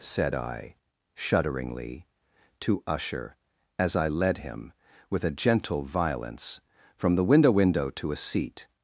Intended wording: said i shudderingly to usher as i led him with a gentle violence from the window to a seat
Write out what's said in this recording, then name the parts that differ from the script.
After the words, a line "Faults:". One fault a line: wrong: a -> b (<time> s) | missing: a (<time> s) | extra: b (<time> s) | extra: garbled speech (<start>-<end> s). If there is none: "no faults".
said i shudderingly to usher as i led him with a gentle violence from the window window to a seat
Faults:
extra: window (7.5 s)